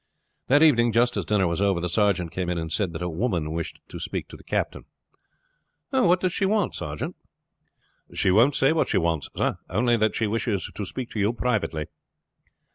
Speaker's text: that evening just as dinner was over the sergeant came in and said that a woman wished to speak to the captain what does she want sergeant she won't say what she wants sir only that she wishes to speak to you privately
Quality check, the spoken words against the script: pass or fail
pass